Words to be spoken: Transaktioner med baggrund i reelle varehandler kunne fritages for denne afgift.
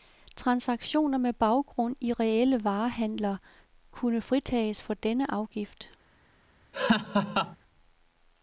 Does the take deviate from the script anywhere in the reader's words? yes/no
no